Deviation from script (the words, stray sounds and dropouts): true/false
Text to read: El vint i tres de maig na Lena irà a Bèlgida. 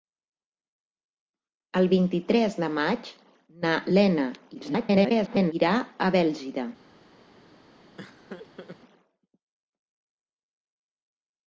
true